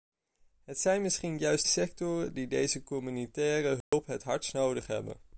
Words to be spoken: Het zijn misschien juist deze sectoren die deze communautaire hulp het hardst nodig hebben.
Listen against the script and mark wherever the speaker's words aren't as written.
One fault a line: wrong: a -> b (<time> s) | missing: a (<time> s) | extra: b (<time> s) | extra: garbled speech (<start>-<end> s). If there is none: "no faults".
missing: deze (1.6 s)